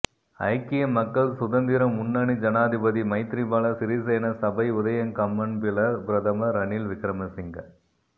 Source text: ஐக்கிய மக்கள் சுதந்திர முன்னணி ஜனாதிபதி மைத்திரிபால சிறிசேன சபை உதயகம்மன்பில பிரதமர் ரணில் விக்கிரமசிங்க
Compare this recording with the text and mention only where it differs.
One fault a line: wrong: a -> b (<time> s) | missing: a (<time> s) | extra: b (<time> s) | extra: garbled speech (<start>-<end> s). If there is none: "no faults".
no faults